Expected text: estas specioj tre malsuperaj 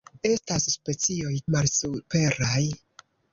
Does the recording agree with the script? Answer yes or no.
no